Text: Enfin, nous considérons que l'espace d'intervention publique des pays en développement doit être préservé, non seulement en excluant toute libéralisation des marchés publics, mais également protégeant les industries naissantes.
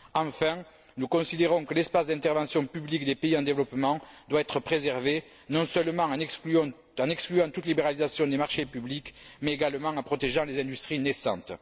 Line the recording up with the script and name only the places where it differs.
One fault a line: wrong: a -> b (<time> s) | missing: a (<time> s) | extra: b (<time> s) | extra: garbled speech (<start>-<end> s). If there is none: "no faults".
extra: en (9.9 s)